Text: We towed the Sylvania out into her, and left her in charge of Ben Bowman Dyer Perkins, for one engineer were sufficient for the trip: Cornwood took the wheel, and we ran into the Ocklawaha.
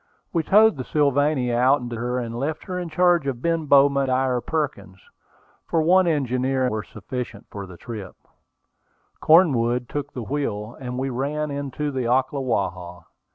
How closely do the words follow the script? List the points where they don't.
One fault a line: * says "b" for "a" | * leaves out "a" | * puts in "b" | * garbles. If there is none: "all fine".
all fine